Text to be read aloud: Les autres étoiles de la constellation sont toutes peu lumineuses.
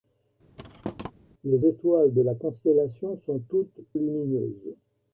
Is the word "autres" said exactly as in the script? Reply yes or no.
no